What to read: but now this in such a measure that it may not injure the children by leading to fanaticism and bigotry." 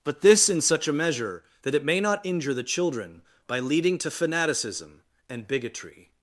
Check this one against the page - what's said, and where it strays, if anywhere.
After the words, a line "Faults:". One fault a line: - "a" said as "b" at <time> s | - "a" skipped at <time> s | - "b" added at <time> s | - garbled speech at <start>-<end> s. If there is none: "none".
but this in such a measure that it may not injure the children by leading to fanaticism and bigotry."
Faults:
- "now" skipped at 0.2 s